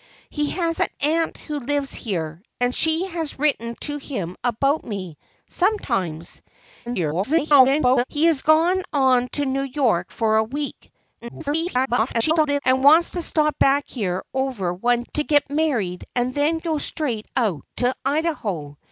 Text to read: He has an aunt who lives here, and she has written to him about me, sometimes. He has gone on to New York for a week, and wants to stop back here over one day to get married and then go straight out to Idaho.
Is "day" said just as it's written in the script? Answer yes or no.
no